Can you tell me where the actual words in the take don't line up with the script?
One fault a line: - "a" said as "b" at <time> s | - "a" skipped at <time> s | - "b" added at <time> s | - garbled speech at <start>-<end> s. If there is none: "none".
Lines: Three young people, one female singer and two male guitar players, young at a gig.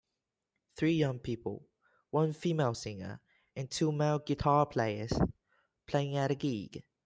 - "young" said as "playing" at 5.8 s